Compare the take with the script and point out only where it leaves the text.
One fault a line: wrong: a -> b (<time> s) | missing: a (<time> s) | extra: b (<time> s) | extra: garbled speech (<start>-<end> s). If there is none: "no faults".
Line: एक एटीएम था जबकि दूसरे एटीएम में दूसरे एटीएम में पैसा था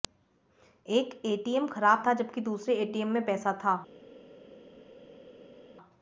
extra: खराब (1.7 s)
missing: दूसरे एटीएम में (3.2 s)